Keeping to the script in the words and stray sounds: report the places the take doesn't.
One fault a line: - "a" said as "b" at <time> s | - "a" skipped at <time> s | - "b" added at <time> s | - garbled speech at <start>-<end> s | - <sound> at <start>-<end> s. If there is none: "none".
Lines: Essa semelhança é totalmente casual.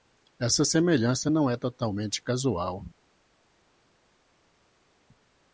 - "não" added at 1.3 s